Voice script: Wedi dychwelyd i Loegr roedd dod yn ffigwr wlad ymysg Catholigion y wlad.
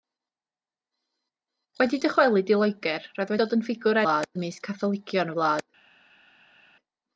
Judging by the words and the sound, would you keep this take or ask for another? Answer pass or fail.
pass